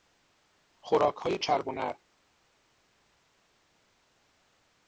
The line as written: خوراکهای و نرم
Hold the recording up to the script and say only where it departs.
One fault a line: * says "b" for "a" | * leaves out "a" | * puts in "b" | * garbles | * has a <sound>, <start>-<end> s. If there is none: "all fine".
* puts in "چرب"